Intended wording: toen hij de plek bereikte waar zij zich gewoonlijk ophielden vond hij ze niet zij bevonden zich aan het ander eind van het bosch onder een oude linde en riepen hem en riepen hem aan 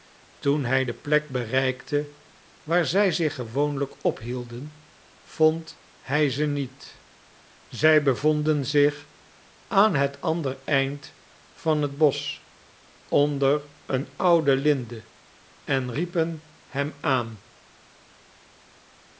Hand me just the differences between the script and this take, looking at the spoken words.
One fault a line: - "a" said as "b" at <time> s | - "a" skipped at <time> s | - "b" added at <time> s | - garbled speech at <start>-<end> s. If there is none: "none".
- "en riepen hem" skipped at 16.9 s